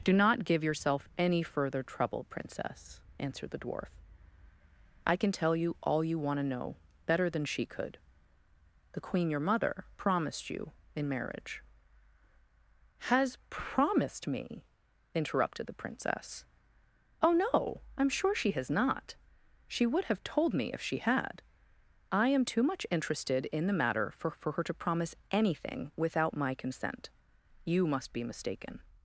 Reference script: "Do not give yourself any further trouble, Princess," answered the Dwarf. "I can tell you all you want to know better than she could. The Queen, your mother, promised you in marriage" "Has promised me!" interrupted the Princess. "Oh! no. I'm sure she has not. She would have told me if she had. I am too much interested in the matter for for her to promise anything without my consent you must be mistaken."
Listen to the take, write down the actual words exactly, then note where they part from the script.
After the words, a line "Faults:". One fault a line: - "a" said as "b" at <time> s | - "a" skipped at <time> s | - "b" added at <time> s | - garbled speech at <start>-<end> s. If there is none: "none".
"Do not give yourself any further trouble, Princess," answered the Dwarf. "I can tell you all you want to know better than she could. The Queen, your mother, promised you in marriage" "Has promised me!" interrupted the Princess. "Oh! no. I'm sure she has not. She would have told me if she had. I am too much interested in the matter for for her to promise anything without my consent you must be mistaken."
Faults:
none